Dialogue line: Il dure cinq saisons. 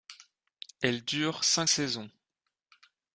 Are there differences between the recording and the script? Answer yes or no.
yes